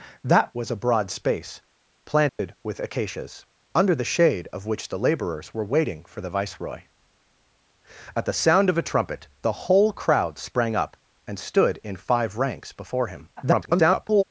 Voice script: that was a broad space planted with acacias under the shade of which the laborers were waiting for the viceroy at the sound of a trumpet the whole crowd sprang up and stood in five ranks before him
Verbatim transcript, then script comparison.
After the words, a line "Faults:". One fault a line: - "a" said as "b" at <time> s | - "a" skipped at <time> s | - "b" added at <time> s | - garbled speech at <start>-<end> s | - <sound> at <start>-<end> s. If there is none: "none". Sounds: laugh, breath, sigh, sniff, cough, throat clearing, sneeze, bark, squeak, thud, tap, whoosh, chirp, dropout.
that was a broad space planted with acacias under the shade of which the laborers were waiting for the viceroy at the sound of a trumpet the whole crowd sprang up and stood in five ranks before him [garbled]
Faults:
- dropout at 2.3-2.4 s
- garbled speech at 13.4-14.2 s